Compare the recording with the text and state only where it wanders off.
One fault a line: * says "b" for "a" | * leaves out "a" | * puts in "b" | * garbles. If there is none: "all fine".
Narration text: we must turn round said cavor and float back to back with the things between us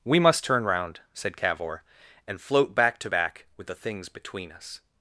all fine